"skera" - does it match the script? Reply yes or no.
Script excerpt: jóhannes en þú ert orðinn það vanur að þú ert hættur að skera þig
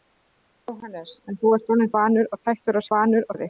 no